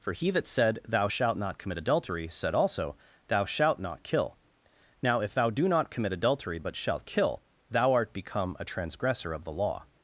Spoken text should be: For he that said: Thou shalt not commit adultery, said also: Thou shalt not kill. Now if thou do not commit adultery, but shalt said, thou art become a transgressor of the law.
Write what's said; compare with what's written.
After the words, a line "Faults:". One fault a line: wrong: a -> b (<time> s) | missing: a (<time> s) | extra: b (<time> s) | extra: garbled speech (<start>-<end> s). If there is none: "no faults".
For he that said: Thou shalt not commit adultery, said also: Thou shalt not kill. Now if thou do not commit adultery, but shalt kill, thou art become a transgressor of the law.
Faults:
wrong: said -> kill (7.0 s)